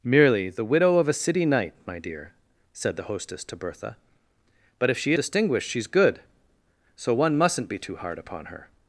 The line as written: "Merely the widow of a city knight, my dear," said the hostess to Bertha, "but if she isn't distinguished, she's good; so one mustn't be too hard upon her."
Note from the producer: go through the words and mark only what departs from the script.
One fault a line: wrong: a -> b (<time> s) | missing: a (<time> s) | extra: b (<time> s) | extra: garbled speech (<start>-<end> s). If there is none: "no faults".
missing: isn't (5.1 s)